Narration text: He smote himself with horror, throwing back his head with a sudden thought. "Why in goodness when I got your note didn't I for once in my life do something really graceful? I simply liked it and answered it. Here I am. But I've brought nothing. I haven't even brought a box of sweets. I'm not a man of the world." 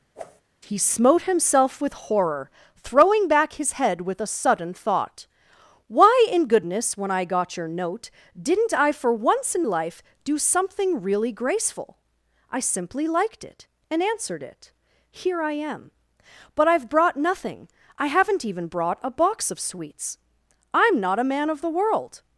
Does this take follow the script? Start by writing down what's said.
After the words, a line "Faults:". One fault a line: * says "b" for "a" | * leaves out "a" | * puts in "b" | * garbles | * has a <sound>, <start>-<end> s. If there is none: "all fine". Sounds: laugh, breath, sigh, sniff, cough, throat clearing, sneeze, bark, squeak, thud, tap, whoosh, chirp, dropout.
He smote himself with horror, throwing back his head with a sudden thought. "Why in goodness when I got your note didn't I for once in life do something really graceful? I simply liked it and answered it. Here I am. But I've brought nothing. I haven't even brought a box of sweets. I'm not a man of the world."
Faults:
* has a whoosh, 0.1-0.4 s
* leaves out "my"